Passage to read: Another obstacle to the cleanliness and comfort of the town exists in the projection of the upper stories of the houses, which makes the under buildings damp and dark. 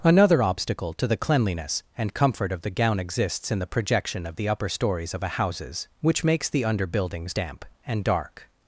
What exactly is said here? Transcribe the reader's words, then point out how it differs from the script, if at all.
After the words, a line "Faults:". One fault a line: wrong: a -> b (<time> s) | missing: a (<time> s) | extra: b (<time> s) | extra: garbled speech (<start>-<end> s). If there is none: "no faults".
Another obstacle to the cleanliness and comfort of the gown exists in the projection of the upper stories of a houses, which makes the under buildings damp and dark.
Faults:
wrong: town -> gown (2.7 s)
wrong: the -> a (5.2 s)